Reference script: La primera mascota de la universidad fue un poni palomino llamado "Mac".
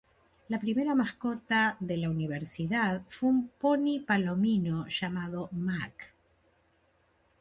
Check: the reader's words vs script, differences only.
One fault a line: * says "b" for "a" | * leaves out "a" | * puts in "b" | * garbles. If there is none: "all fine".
all fine